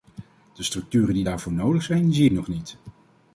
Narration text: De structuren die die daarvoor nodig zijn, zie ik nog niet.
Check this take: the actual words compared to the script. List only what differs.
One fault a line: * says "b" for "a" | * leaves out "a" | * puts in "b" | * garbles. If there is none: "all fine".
* leaves out "die"